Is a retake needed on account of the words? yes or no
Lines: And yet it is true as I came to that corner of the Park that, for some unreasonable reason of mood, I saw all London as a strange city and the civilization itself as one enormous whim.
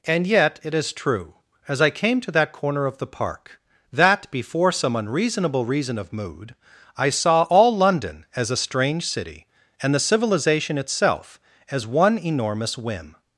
yes